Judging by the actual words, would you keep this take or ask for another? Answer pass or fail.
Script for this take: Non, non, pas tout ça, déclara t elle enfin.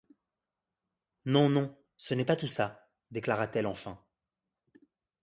fail